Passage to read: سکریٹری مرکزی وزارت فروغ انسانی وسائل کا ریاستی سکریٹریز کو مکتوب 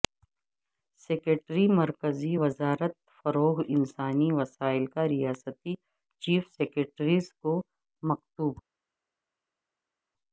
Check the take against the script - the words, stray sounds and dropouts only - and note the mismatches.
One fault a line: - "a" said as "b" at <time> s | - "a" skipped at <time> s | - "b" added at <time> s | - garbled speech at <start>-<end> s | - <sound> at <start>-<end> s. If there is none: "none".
- "چیف" added at 6.2 s